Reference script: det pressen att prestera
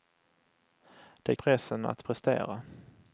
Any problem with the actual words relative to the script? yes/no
no